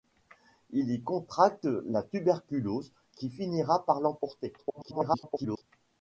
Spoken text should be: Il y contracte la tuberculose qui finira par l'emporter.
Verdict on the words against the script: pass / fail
fail